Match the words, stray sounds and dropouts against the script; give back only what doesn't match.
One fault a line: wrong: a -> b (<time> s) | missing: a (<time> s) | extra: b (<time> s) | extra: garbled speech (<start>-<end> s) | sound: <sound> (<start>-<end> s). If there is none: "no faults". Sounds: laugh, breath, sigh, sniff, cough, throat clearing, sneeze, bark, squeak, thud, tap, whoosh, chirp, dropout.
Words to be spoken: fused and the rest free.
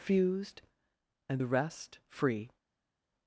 no faults